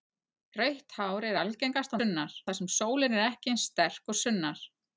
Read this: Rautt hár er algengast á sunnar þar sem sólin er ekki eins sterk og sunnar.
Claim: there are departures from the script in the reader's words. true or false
false